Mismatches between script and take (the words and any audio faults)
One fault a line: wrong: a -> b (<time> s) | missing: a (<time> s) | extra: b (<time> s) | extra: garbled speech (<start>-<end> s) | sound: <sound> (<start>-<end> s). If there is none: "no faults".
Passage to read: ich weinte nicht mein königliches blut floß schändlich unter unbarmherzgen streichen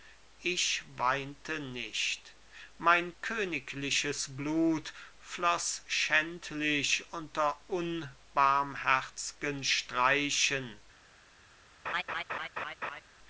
sound: laugh (11.8-13.0 s)